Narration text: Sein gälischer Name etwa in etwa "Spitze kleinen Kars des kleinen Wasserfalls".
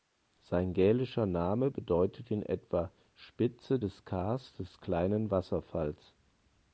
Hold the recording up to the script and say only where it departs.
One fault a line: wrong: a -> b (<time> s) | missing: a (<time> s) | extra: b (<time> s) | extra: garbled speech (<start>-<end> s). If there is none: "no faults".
wrong: etwa -> bedeutet (1.7 s)
wrong: kleinen -> des (3.8 s)